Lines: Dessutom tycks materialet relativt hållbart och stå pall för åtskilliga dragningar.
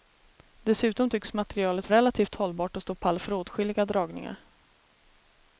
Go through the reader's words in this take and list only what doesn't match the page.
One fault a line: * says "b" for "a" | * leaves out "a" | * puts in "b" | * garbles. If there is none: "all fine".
all fine